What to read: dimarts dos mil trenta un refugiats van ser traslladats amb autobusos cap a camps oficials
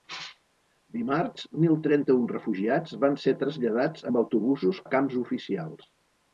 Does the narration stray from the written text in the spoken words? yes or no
yes